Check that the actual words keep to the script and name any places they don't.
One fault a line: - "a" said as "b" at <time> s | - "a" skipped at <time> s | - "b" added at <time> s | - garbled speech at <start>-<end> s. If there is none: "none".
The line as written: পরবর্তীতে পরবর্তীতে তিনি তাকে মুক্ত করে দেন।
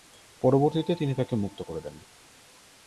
- "পরবর্তীতে" skipped at 0.9 s